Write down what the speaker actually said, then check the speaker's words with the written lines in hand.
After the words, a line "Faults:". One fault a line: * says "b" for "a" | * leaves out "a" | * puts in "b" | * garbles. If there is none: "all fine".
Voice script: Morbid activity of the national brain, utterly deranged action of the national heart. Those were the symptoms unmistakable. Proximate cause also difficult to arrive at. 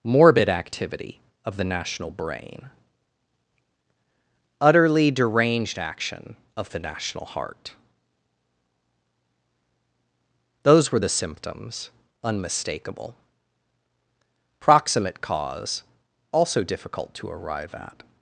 Morbid activity of the national brain, utterly deranged action of the national heart. Those were the symptoms unmistakable. Proximate cause also difficult to arrive at.
Faults:
all fine